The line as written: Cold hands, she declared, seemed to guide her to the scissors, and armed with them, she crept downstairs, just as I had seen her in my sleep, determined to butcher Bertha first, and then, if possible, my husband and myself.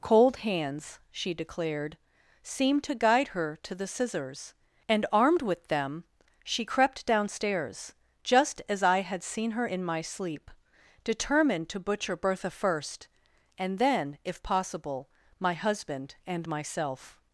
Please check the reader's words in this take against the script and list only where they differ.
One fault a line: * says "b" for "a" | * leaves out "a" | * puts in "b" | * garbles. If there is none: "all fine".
all fine